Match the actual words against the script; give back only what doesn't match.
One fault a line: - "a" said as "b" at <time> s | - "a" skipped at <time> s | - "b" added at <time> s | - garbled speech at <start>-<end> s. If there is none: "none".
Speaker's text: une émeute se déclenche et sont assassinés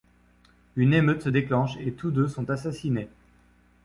- "tous deux" added at 1.9 s